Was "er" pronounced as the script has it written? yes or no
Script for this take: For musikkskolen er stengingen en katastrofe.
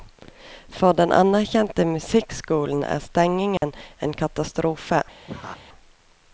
yes